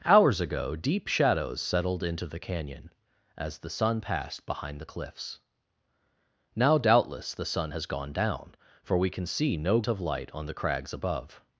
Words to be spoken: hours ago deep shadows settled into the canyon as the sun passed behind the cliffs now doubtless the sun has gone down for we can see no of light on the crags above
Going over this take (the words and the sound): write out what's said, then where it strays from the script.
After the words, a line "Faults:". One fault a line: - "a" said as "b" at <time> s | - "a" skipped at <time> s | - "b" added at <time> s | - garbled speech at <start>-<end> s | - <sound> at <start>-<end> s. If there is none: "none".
hours ago deep shadows settled into the canyon as the sun passed behind the cliffs now doubtless the sun has gone down for we can see no of light on the crags above
Faults:
none